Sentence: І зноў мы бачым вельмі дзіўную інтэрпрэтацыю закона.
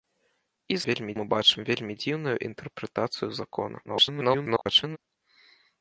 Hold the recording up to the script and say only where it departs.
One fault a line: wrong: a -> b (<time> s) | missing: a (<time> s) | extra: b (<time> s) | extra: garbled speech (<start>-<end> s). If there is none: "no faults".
wrong: зноў -> вельмі (0.9 s)
extra: garbled speech (3.8-5.0 s)